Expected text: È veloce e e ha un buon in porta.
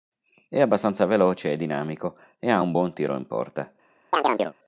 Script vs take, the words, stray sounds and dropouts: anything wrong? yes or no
yes